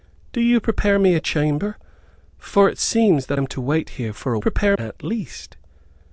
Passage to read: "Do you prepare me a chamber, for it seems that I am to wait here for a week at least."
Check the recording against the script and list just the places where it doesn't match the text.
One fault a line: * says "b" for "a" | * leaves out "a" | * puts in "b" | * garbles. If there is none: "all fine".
* leaves out "I"
* says "prepare" for "week"